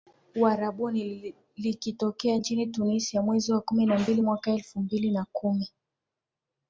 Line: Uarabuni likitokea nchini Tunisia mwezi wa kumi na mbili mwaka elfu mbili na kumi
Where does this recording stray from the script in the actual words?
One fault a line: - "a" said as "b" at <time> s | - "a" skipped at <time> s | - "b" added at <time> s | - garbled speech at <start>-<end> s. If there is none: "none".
none